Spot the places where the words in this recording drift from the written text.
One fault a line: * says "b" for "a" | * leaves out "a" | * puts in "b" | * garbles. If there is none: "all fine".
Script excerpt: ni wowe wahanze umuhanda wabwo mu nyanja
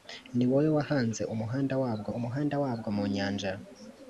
* puts in "umuhanda wabwo"